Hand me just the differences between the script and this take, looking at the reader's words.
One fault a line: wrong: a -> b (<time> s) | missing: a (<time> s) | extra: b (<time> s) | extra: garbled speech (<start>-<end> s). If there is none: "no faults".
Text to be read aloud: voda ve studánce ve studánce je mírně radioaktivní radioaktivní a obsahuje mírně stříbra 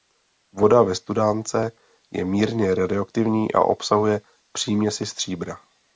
missing: ve studánce (1.7 s)
missing: radioaktivní (3.5 s)
wrong: mírně -> příměsi (4.5 s)